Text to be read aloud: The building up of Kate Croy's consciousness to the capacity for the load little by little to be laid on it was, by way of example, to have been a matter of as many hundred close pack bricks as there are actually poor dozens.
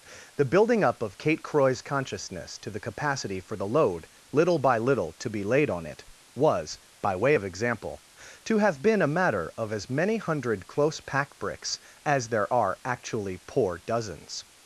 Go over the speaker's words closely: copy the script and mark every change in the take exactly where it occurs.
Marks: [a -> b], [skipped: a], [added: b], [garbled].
The building up of Kate Croy's consciousness to the capacity for the load little by little to be laid on it was, by way of example, to have been a matter of as many hundred close pack bricks as there are actually poor dozens.